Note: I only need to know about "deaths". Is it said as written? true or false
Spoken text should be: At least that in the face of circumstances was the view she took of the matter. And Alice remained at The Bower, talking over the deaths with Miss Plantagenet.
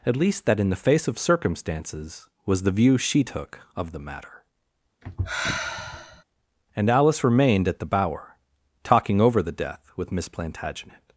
false